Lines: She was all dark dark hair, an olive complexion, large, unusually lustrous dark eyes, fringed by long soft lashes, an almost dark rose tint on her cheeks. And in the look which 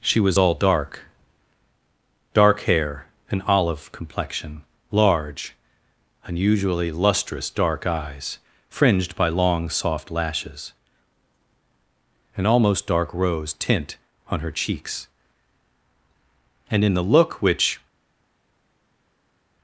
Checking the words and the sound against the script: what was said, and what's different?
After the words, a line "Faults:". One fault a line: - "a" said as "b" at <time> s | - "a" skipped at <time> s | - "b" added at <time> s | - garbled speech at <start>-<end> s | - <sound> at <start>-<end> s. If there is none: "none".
She was all dark dark hair, an olive complexion, large, unusually lustrous dark eyes, fringed by long soft lashes, an almost dark rose tint on her cheeks. And in the look which
Faults:
none